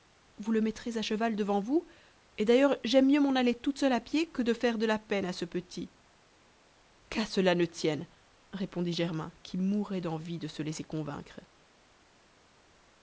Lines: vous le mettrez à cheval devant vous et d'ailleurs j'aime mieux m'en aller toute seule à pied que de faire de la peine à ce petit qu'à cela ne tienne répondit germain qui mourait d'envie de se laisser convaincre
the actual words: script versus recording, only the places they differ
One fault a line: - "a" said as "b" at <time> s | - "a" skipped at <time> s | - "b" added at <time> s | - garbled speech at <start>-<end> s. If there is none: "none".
none